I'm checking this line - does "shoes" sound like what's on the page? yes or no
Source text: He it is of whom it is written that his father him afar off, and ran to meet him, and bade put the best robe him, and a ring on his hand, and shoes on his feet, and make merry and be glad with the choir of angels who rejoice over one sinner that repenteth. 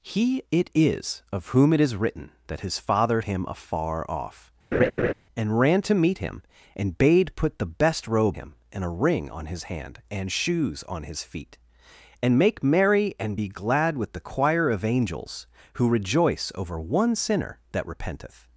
yes